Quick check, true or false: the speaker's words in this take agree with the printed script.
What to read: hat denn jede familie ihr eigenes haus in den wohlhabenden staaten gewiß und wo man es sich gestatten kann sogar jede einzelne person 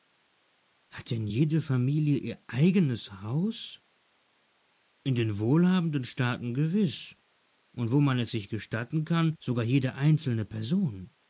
true